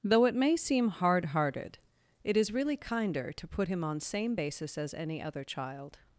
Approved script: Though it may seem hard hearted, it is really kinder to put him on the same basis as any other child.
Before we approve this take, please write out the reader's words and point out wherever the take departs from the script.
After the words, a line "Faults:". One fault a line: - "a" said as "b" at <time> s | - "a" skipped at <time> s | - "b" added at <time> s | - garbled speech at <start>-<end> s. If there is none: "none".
Though it may seem hard hearted, it is really kinder to put him on same basis as any other child.
Faults:
- "the" skipped at 4.0 s